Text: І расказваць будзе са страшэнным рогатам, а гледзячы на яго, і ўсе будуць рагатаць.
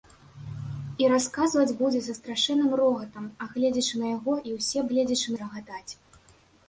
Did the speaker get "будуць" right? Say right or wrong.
wrong